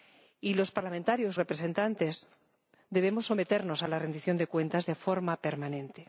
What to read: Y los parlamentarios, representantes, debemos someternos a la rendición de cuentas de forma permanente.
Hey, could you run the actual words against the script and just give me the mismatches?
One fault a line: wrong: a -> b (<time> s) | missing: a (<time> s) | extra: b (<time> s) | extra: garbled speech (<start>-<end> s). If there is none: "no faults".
no faults